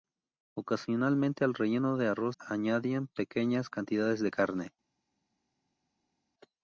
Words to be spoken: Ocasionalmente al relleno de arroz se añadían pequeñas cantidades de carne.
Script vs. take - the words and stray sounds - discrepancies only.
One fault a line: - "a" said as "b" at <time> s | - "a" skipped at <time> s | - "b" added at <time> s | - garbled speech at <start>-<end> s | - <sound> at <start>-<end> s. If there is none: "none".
- "se" skipped at 2.4 s